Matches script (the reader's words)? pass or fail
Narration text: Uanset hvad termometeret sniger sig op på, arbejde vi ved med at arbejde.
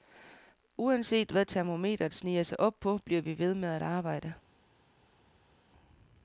fail